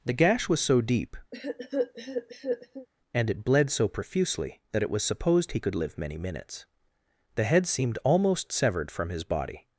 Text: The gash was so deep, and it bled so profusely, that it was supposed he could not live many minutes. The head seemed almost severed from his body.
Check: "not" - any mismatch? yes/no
yes